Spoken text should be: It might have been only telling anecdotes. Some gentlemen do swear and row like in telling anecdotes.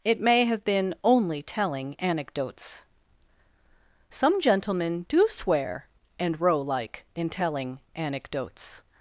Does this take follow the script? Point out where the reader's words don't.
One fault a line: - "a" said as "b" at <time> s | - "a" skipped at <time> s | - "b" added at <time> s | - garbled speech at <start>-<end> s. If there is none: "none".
- "might" said as "may" at 0.2 s